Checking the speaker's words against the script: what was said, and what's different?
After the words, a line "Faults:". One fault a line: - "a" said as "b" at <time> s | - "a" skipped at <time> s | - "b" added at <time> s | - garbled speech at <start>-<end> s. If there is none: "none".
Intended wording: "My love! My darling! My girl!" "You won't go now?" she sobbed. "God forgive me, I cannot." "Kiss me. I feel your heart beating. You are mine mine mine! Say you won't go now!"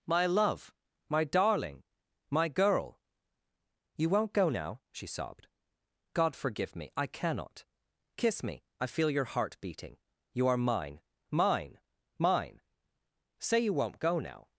"My love! My darling! My girl!" "You won't go now?" she sobbed. "God forgive me, I cannot." "Kiss me. I feel your heart beating. You are mine mine mine! Say you won't go now!"
Faults:
none